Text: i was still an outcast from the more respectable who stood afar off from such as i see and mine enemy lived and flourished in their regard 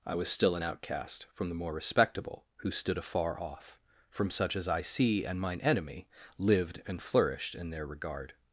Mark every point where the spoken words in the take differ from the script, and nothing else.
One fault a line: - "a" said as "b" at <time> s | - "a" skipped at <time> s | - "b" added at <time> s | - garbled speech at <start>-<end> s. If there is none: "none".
none